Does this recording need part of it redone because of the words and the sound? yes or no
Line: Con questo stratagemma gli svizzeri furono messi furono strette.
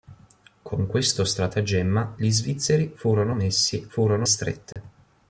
yes